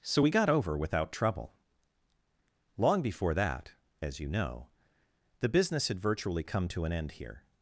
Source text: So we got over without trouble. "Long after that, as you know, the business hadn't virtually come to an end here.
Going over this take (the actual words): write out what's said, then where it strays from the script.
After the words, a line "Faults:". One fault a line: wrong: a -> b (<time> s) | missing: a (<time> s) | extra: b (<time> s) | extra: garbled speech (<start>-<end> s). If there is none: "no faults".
So we got over without trouble. "Long before that, as you know, the business had virtually come to an end here.
Faults:
wrong: after -> before (3.0 s)
wrong: hadn't -> had (5.9 s)